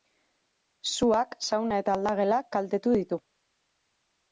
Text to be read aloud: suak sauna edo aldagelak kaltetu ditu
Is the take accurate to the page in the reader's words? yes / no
no